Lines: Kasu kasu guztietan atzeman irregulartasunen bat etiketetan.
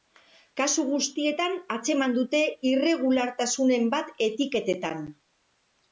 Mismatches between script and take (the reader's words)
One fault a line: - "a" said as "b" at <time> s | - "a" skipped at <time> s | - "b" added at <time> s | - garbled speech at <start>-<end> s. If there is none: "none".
- "kasu" skipped at 0.8 s
- "dute" added at 2.2 s